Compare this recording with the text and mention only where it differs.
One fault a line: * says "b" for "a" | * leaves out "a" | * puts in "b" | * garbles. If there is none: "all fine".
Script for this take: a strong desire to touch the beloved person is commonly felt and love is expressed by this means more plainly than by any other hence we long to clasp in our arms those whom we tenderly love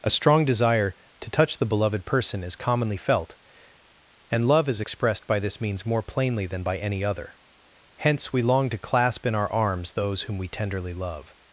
all fine